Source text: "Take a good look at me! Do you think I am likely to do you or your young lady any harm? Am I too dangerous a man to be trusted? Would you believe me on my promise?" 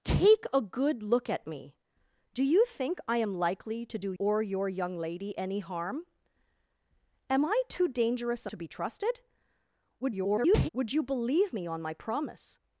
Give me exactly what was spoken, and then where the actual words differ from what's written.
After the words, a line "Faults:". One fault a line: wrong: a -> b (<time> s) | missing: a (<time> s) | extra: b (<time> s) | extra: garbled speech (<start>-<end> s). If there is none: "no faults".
"Take a good look at me! Do you think I am likely to do or your young lady any harm? Am I too dangerous a to be trusted? [garbled] Would you believe me on my promise?"
Faults:
missing: you (4.1 s)
missing: man (8.5 s)
extra: garbled speech (10.0-10.7 s)